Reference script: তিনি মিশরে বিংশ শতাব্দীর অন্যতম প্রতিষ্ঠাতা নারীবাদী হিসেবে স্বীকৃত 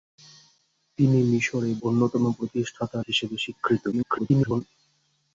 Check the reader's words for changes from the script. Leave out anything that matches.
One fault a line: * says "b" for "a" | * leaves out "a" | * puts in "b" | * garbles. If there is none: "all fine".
* leaves out "বিংশ শতাব্দীর"
* leaves out "নারীবাদী"
* garbles